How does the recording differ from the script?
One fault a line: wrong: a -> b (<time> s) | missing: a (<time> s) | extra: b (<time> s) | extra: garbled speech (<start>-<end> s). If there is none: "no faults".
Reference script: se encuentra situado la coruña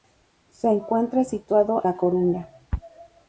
no faults